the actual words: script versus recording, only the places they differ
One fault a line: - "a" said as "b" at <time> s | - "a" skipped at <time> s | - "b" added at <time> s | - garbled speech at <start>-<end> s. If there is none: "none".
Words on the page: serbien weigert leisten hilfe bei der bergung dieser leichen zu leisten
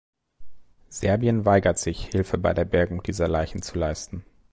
- "leisten" said as "sich" at 1.8 s